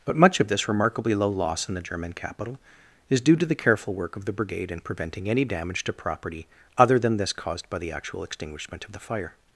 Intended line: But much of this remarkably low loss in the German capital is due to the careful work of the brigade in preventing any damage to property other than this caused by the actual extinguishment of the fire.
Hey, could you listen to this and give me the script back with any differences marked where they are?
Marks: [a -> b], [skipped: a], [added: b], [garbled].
But much of this remarkably low loss in the German capital is due to the careful work of the brigade in preventing any damage to property other than this caused by the actual extinguishment of the fire.